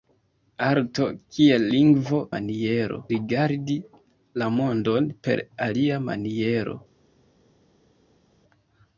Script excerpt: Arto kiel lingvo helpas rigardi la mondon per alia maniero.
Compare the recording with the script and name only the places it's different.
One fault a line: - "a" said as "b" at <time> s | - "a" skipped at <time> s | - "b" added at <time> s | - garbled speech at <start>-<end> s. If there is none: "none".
- "helpas" said as "maniero" at 2.3 s